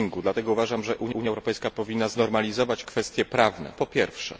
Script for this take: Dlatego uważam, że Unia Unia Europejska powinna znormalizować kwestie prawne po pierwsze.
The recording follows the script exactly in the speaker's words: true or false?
true